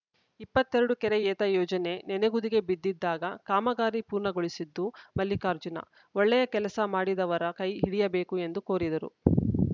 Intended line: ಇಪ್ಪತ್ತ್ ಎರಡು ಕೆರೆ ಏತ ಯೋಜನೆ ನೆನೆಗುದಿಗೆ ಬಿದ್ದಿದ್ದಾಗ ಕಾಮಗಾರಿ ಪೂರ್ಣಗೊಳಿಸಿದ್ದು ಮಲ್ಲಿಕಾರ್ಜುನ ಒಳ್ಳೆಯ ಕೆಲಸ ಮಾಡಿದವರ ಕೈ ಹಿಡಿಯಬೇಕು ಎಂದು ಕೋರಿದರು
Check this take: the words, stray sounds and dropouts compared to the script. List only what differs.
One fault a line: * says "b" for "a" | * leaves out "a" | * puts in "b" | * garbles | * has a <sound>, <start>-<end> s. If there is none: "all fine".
all fine